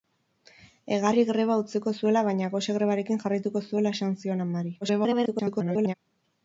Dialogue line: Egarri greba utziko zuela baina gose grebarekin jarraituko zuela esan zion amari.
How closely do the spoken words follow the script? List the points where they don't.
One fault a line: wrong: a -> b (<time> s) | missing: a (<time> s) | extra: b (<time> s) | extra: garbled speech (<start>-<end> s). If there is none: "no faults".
extra: garbled speech (4.8-5.9 s)